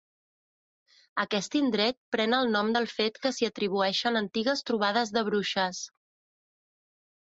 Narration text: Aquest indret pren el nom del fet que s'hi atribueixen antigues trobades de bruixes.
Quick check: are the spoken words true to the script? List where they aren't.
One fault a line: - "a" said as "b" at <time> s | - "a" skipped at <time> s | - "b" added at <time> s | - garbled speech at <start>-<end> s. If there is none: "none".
none